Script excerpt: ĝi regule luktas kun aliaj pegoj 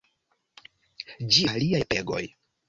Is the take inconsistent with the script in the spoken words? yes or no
yes